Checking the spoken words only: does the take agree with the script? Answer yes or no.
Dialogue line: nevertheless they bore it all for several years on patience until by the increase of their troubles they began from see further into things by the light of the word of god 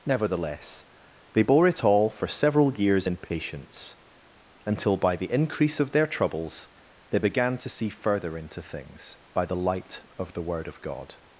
no